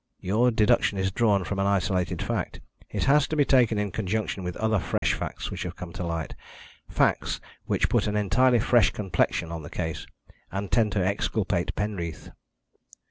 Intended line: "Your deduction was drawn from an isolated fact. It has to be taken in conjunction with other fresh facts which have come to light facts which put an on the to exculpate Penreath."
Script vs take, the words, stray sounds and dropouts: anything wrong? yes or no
yes